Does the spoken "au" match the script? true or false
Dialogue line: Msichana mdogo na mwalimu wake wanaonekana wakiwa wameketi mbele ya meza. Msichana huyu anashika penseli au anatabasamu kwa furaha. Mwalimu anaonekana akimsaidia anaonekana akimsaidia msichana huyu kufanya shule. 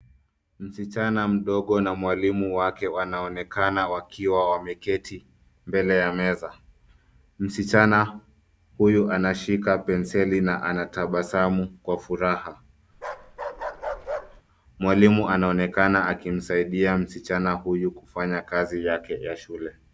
false